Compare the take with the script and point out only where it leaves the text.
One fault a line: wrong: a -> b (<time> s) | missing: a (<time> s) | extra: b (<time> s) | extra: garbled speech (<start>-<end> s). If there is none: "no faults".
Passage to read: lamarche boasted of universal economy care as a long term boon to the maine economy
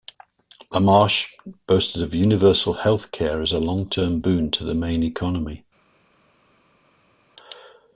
wrong: economy -> health (2.7 s)